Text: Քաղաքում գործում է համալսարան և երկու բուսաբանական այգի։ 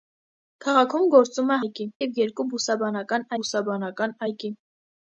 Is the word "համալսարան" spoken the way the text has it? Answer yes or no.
no